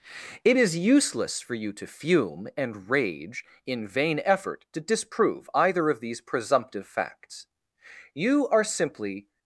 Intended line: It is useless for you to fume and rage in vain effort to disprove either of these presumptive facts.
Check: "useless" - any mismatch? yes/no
no